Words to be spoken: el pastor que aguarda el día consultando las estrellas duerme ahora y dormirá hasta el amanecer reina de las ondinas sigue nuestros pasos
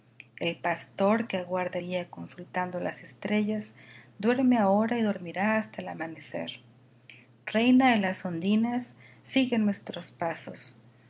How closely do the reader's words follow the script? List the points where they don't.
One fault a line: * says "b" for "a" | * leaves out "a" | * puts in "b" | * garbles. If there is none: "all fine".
* leaves out "el"